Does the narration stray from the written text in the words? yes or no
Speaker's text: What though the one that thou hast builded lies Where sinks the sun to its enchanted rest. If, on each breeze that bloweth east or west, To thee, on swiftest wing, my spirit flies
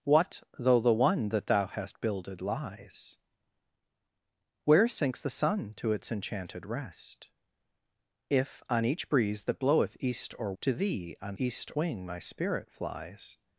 yes